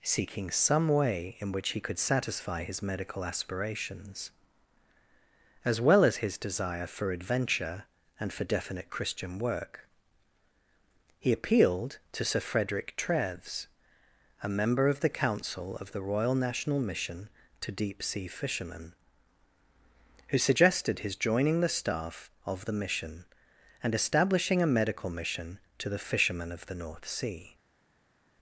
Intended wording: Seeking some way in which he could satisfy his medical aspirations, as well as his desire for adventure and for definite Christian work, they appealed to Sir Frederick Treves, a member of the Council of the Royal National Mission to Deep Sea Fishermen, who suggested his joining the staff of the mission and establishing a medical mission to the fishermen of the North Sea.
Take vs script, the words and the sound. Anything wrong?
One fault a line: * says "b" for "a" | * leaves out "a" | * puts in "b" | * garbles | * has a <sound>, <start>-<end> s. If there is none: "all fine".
* says "he" for "they"